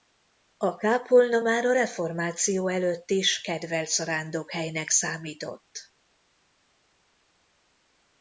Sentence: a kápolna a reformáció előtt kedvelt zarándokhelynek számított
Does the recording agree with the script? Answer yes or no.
no